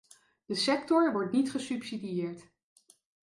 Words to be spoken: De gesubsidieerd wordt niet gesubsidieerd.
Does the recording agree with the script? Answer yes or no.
no